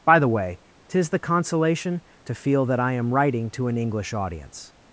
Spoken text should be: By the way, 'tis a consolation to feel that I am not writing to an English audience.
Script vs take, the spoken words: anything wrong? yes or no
yes